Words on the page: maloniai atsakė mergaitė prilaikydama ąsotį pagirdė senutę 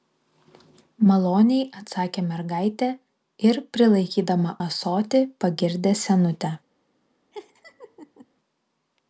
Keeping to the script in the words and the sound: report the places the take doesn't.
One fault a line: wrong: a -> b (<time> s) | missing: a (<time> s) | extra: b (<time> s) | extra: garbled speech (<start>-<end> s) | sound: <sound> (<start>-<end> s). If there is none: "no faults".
extra: ir (3.5 s)
sound: laugh (7.3-8.3 s)